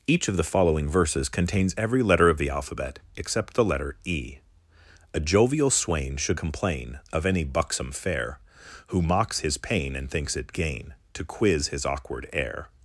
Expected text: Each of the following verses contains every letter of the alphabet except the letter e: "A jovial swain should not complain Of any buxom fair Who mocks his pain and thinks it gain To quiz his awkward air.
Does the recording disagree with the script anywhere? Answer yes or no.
yes